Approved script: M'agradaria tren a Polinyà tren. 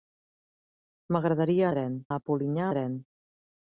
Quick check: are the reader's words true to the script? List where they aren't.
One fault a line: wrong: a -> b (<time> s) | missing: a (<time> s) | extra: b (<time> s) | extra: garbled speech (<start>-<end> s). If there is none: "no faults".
no faults